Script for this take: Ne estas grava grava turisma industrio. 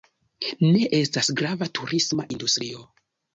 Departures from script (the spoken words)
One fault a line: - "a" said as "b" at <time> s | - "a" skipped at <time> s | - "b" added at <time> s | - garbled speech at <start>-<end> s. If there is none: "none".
- "grava" skipped at 1.7 s